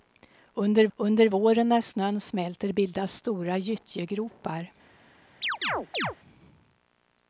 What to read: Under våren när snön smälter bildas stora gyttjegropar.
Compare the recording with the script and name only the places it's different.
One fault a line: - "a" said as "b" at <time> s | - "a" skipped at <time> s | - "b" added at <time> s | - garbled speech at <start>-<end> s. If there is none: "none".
- "under" added at 1.0 s